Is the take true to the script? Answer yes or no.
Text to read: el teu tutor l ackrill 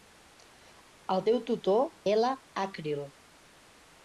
yes